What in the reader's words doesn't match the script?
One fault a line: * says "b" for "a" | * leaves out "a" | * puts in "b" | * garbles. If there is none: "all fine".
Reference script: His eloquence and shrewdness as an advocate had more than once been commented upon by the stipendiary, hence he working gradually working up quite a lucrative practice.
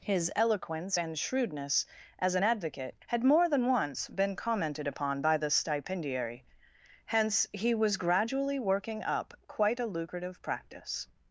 * says "was" for "working"